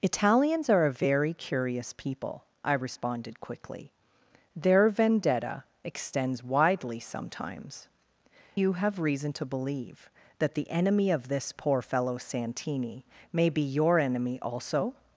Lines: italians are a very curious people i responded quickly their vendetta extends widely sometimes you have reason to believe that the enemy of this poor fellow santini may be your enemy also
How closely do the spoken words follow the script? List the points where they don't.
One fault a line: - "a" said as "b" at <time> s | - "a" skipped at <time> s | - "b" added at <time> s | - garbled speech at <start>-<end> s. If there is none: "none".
none